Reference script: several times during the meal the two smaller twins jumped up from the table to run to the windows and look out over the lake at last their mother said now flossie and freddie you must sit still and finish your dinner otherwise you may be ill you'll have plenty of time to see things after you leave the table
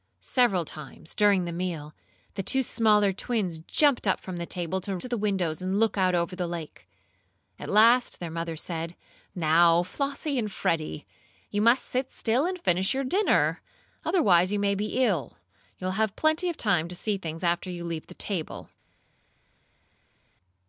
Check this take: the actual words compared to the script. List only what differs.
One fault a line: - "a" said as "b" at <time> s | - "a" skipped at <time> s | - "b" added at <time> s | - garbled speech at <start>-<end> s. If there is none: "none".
- "run" skipped at 5.0 s